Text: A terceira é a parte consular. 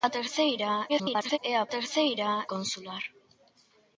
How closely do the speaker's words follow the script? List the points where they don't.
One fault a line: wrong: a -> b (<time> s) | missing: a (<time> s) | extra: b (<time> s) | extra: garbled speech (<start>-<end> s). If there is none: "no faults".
extra: garbled speech (0.9-1.4 s)
wrong: parte -> terceira (1.7 s)